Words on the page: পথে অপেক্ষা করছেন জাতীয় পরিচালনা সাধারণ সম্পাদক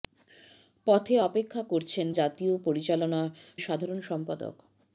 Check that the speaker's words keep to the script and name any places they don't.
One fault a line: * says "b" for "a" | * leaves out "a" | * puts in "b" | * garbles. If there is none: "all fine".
all fine